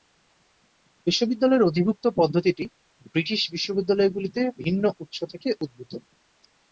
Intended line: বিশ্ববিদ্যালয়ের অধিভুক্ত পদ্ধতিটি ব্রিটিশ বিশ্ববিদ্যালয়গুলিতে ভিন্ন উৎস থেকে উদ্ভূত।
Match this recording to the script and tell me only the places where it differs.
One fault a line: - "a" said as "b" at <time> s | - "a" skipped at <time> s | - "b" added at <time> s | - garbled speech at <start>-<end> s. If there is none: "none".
none